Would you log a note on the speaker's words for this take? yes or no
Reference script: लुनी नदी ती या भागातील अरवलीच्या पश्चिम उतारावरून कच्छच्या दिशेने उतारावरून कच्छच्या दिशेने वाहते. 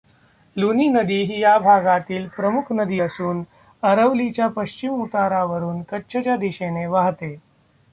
yes